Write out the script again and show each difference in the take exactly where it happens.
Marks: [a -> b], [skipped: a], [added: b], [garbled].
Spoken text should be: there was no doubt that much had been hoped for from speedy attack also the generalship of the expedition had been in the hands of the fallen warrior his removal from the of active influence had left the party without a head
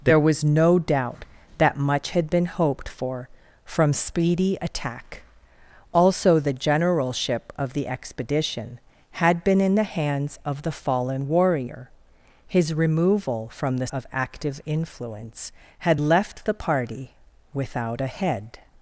there was no doubt that much had been hoped for from speedy attack also the generalship of the expedition had been in the hands of the fallen warrior his removal from the of active influence had left the party without a head